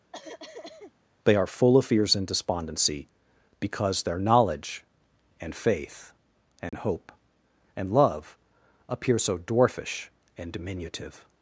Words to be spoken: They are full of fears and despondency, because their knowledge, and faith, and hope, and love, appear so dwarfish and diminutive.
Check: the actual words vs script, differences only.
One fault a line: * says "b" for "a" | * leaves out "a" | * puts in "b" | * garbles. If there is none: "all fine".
all fine